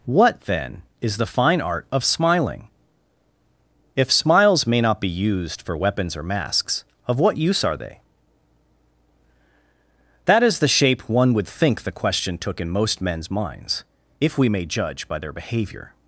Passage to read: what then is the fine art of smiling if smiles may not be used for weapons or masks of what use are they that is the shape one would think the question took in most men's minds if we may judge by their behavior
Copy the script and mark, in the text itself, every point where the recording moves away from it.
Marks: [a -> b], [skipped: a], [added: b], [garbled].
what then is the fine art of smiling if smiles may not be used for weapons or masks of what use are they that is the shape one would think the question took in most men's minds if we may judge by their behavior